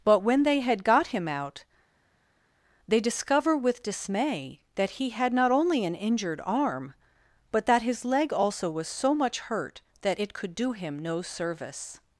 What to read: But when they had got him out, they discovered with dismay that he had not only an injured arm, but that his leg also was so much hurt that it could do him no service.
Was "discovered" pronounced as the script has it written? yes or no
no